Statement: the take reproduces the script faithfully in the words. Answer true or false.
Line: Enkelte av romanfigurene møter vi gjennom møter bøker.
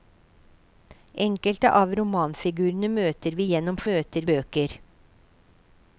true